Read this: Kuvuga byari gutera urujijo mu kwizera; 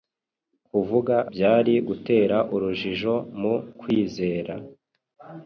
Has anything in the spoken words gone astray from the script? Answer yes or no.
no